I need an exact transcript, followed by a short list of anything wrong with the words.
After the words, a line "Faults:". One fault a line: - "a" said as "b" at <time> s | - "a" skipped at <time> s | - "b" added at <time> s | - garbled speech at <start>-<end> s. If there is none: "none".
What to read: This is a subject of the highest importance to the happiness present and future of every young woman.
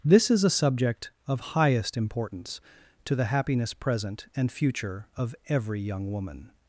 This is a subject of highest importance to the happiness present and future of every young woman.
Faults:
- "the" skipped at 1.4 s